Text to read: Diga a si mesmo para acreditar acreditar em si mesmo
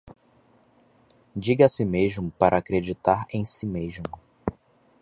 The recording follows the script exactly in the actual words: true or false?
false